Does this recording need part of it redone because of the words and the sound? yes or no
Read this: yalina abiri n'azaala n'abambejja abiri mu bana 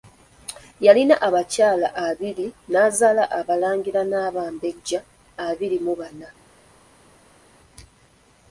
yes